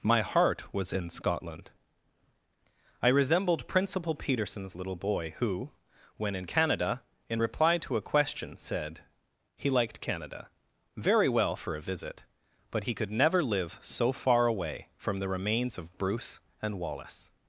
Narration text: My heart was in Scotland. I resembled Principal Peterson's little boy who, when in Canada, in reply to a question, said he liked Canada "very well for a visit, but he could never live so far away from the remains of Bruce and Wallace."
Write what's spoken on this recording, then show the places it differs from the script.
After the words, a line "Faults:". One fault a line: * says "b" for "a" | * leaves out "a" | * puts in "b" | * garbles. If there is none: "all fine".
My heart was in Scotland. I resembled Principal Peterson's little boy who, when in Canada, in reply to a question, said he liked Canada "very well for a visit, but he could never live so far away from the remains of Bruce and Wallace."
Faults:
all fine